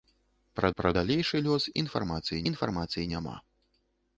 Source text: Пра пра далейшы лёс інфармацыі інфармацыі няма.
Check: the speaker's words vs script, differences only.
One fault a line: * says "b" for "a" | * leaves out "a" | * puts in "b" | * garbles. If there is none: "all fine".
all fine